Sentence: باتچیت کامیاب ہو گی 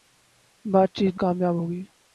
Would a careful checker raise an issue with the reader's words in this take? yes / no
no